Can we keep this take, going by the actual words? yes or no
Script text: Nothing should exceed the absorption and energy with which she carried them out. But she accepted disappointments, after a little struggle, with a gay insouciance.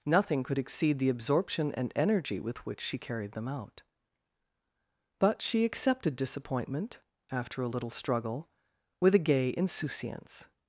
no